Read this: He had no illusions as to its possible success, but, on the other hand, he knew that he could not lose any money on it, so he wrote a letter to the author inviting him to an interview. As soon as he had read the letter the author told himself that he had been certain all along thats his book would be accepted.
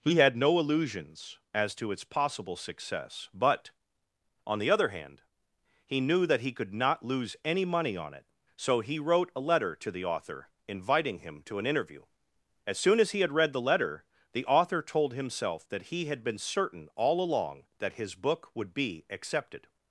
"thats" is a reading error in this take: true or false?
true